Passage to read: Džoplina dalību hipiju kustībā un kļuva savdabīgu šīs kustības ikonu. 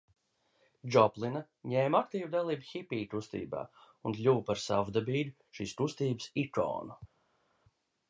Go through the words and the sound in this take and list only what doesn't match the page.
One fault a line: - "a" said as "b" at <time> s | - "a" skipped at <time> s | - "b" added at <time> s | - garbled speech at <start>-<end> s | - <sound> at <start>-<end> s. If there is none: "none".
- "ņēma aktīvu" added at 1.7 s
- "par" added at 4.5 s